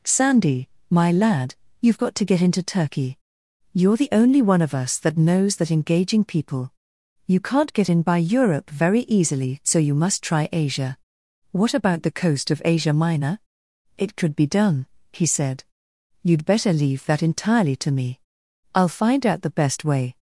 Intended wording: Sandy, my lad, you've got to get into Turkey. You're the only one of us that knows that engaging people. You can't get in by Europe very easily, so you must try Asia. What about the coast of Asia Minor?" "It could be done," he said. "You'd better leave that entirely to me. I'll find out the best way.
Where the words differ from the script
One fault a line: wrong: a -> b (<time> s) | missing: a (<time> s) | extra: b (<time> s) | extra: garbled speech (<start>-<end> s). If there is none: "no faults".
no faults